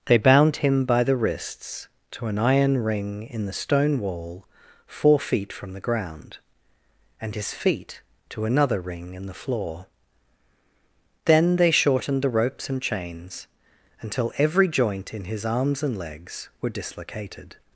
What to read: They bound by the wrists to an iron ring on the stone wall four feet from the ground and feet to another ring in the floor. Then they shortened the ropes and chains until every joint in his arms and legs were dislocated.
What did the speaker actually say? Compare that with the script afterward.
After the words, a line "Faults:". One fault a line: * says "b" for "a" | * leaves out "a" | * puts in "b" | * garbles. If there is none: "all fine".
They bound him by the wrists to an iron ring in the stone wall four feet from the ground and his feet to another ring in the floor. Then they shortened the ropes and chains until every joint in his arms and legs were dislocated.
Faults:
* puts in "him"
* says "in" for "on"
* puts in "his"